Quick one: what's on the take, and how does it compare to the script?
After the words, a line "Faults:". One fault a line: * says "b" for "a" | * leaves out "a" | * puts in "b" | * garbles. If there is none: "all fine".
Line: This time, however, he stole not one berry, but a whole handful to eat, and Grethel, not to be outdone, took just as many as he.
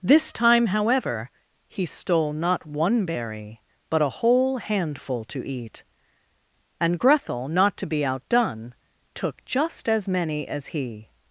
This time, however, he stole not one berry, but a whole handful to eat, and Grethel, not to be outdone, took just as many as he.
Faults:
all fine